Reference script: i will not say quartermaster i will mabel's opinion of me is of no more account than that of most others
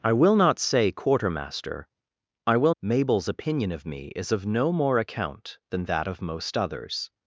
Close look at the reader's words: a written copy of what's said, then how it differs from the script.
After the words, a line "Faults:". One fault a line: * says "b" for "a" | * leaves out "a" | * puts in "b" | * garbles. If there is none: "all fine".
i will not say quartermaster i will mabel's opinion of me is of no more account than that of most others
Faults:
all fine